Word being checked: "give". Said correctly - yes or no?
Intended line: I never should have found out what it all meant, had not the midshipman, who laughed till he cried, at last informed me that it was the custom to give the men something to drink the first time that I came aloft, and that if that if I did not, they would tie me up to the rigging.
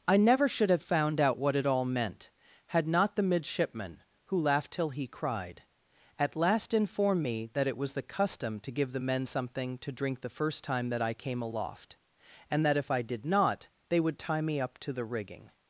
yes